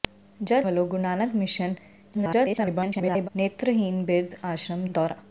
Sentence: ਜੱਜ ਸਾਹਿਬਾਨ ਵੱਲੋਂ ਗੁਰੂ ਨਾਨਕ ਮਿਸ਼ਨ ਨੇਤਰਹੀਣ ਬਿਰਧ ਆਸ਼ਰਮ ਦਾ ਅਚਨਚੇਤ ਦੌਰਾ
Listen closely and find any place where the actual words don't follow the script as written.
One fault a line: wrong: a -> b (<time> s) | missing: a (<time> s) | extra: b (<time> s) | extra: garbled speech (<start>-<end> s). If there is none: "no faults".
missing: ਸਾਹਿਬਾਨ (0.7 s)
extra: garbled speech (2.1-3.3 s)
missing: ਦਾ ਅਚਨਚੇਤ (4.9 s)